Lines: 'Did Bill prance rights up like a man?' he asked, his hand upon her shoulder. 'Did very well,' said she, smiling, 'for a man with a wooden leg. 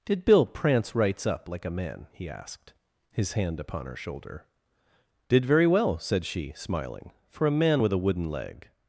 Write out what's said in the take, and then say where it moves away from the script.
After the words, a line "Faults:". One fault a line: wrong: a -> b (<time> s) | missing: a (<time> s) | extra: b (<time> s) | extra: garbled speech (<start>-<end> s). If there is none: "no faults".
'Did Bill prance rights up like a man?' he asked, his hand upon her shoulder. 'Did very well,' said she, smiling, 'for a man with a wooden leg.
Faults:
no faults